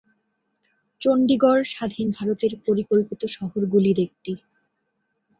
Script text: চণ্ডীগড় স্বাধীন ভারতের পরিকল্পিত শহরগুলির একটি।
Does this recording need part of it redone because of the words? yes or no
no